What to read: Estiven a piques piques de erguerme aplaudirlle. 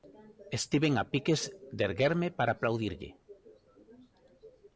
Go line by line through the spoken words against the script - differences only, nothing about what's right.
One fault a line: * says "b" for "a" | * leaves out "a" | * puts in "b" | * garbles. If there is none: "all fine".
* leaves out "piques"
* puts in "para"